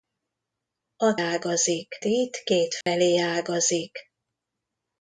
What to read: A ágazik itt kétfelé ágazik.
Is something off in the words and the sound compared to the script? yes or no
yes